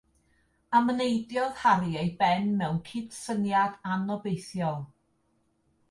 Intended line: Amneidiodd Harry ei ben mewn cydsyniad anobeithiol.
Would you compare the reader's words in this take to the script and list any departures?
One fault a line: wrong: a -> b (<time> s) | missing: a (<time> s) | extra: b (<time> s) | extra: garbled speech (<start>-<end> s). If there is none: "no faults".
no faults